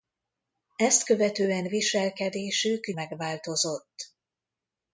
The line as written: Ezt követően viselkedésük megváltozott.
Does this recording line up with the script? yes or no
yes